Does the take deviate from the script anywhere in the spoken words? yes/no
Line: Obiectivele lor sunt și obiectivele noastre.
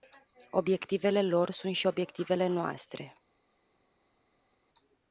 no